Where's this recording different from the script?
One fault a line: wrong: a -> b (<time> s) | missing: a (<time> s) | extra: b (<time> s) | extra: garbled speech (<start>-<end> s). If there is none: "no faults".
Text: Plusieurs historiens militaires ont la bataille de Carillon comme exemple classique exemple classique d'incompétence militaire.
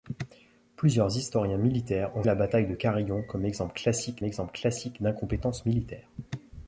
no faults